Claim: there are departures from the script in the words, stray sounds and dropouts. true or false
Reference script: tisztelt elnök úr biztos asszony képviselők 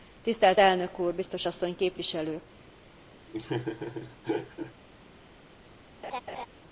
true